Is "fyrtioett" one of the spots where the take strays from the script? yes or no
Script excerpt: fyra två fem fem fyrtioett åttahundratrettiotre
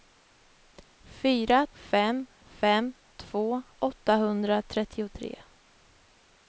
yes